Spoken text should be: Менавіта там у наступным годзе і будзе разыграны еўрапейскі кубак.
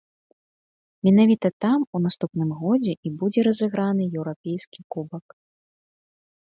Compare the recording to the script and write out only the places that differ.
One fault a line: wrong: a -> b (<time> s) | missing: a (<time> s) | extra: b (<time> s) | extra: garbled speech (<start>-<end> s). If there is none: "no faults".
no faults